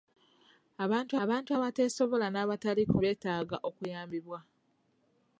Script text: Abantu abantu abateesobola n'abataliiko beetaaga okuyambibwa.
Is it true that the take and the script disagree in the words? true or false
false